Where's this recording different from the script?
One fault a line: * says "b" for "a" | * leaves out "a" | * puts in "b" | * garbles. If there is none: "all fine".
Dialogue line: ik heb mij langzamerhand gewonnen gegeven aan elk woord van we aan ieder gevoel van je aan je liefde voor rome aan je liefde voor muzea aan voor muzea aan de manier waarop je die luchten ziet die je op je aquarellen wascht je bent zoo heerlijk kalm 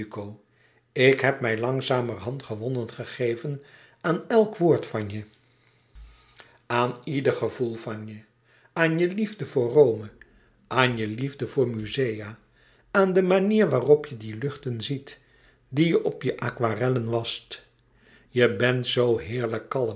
* says "je" for "we"
* leaves out "voor muzea aan"